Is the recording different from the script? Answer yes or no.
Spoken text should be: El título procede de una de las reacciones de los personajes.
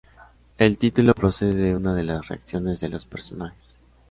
no